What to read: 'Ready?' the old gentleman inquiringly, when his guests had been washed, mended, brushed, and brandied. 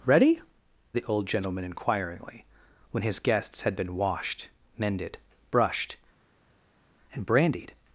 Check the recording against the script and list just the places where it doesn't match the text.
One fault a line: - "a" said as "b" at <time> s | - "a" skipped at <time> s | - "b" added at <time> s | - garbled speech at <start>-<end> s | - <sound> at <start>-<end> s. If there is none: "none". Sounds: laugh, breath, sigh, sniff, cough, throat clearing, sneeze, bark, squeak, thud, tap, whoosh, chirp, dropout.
none